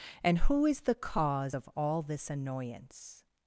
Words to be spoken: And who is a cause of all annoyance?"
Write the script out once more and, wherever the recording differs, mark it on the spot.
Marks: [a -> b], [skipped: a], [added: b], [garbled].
And who is [a -> the] cause of all [added: this] annoyance?"